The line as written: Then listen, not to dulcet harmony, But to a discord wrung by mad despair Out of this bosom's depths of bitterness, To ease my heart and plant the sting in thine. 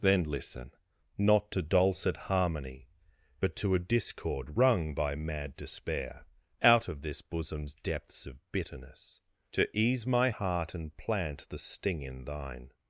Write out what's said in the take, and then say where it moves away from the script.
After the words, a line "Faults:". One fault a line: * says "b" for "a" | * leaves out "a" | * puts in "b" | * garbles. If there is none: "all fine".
Then listen, not to dulcet harmony, But to a discord wrung by mad despair Out of this bosom's depths of bitterness, To ease my heart and plant the sting in thine.
Faults:
all fine